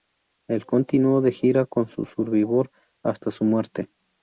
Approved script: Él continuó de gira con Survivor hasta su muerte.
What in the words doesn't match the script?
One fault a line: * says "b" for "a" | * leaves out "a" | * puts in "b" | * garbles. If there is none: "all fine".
all fine